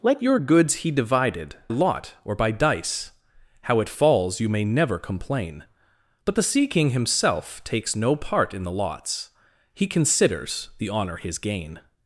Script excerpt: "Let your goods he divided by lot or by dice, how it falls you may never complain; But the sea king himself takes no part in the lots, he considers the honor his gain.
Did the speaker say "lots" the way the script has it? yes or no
yes